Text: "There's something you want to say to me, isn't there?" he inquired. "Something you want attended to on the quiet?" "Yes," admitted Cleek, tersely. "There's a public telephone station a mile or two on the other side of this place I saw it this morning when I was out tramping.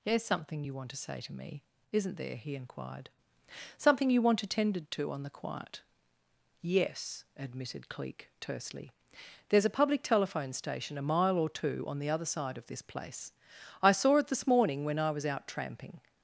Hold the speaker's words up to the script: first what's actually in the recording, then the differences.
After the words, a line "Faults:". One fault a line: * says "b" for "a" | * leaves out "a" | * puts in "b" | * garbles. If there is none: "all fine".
"There's something you want to say to me, isn't there?" he inquired. "Something you want attended to on the quiet?" "Yes," admitted Cleek, tersely. "There's a public telephone station a mile or two on the other side of this place I saw it this morning when I was out tramping.
Faults:
all fine